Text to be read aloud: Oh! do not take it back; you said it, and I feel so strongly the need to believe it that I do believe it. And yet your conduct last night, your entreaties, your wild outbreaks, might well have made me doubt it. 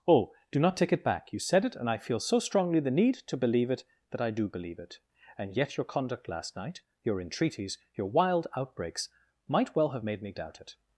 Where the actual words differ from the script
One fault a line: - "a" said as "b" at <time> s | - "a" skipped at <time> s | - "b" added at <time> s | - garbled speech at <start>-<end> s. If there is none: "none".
none